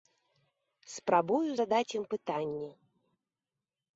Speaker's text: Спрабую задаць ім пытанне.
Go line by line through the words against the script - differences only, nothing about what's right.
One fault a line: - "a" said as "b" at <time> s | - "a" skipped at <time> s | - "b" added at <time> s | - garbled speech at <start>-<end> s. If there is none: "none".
none